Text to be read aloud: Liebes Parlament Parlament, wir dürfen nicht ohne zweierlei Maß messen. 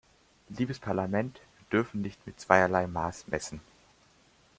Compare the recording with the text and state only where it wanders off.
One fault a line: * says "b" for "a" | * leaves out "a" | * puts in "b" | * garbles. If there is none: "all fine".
* leaves out "Parlament"
* says "mit" for "ohne"